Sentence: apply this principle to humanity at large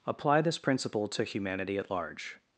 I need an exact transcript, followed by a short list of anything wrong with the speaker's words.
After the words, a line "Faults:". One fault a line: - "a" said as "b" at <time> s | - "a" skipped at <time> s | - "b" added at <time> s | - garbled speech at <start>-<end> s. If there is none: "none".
apply this principle to humanity at large
Faults:
none